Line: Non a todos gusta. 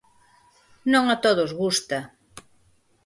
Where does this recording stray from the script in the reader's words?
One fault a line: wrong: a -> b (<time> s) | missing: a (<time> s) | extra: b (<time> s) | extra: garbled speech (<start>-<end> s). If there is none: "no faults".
no faults